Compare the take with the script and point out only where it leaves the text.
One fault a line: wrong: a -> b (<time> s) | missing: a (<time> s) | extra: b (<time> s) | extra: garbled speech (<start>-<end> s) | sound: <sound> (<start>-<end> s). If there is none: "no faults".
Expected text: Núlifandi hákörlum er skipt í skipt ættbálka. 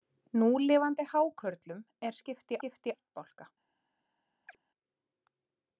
sound: chirp (4.5-4.6 s)